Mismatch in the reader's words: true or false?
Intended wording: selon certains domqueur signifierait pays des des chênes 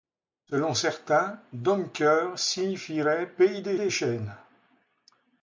false